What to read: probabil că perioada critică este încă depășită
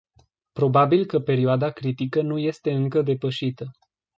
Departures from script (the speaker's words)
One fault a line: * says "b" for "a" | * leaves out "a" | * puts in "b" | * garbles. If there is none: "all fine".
* puts in "nu"